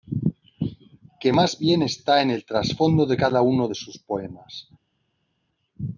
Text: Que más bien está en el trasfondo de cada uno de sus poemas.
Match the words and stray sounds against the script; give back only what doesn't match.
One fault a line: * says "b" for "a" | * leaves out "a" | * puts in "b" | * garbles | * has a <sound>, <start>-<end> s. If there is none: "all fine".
all fine